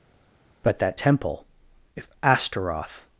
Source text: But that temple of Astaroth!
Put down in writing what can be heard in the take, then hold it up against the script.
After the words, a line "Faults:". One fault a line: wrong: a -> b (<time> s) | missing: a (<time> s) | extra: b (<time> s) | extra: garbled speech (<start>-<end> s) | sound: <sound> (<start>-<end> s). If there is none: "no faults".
But that temple if Astaroth!
Faults:
wrong: of -> if (2.0 s)